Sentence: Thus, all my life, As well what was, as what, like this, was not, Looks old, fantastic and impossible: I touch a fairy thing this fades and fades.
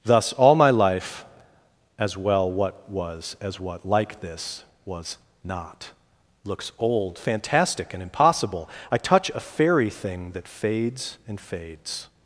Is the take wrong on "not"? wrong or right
right